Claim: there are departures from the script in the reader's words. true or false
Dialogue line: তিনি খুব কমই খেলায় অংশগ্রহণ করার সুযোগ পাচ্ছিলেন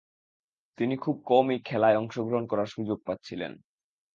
false